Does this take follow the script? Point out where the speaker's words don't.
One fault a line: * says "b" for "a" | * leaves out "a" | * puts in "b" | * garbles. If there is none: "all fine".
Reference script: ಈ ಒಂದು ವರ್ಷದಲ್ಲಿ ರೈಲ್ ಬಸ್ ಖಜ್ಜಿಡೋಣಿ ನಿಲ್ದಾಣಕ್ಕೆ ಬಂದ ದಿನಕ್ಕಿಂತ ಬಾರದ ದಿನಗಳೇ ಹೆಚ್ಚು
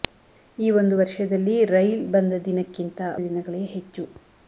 * leaves out "ಬಸ್ ಖಜ್ಜಿಡೋಣಿ ನಿಲ್ದಾಣಕ್ಕೆ"
* leaves out "ಬಾರದ"